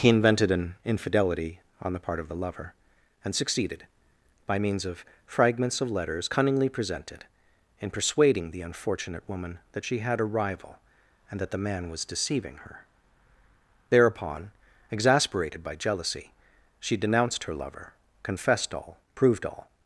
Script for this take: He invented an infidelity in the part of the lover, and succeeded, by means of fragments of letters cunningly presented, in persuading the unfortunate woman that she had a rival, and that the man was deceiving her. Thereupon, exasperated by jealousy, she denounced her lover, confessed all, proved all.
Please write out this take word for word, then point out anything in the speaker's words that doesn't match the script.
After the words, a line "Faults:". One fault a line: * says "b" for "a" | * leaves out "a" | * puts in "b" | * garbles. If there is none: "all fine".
He invented an infidelity on the part of the lover, and succeeded, by means of fragments of letters cunningly presented, in persuading the unfortunate woman that she had a rival, and that the man was deceiving her. Thereupon, exasperated by jealousy, she denounced her lover, confessed all, proved all.
Faults:
* says "on" for "in"